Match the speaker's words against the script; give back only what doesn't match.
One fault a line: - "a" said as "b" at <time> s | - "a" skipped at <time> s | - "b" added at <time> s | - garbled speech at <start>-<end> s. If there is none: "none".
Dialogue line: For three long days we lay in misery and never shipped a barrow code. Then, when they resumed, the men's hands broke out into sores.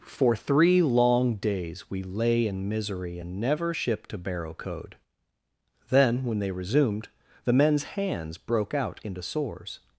none